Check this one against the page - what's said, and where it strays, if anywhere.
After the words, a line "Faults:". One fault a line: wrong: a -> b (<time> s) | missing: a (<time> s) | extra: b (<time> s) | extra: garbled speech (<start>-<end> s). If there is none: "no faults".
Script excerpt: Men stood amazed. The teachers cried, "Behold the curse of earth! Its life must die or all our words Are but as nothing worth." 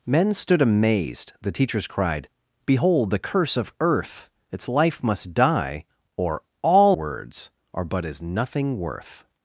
Men stood amazed. The teachers cried, "Behold the curse of earth! Its life must die or all words Are but as nothing worth."
Faults:
missing: our (7.0 s)